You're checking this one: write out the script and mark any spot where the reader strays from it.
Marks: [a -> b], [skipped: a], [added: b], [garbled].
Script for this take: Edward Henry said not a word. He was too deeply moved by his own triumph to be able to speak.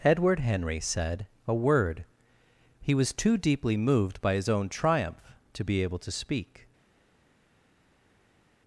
Edward Henry said [skipped: not] a word. He was too deeply moved by his own triumph to be able to speak.